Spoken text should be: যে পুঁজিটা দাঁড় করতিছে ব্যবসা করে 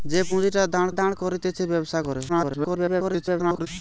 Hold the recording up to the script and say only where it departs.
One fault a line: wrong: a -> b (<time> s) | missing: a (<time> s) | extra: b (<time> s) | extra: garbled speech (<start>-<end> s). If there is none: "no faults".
extra: দাঁড় (0.9 s)
extra: garbled speech (2.3-3.7 s)